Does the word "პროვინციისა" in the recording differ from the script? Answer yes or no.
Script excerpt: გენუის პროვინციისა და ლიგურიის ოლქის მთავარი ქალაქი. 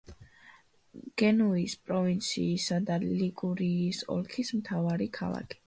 no